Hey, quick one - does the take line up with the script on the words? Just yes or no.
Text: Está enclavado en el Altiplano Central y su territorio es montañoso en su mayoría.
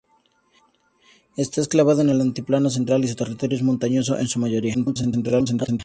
no